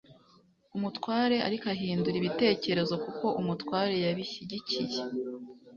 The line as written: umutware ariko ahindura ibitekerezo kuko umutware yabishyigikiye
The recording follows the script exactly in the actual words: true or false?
true